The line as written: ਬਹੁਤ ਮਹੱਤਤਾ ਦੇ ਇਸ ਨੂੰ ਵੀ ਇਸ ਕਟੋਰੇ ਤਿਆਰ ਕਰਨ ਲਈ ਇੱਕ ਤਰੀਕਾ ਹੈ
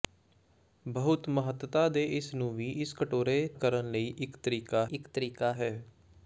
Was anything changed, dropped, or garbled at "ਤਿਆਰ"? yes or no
yes